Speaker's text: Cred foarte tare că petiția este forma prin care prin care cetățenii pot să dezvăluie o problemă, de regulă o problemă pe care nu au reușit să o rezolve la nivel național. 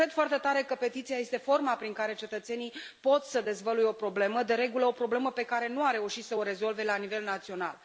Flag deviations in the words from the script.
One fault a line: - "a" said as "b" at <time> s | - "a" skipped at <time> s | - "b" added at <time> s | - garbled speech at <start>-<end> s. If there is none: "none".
- "prin care" skipped at 2.1 s